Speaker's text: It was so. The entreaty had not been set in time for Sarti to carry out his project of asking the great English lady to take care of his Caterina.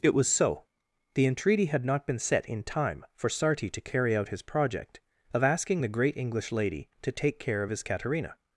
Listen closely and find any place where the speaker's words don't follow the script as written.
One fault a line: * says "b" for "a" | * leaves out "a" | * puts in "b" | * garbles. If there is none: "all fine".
all fine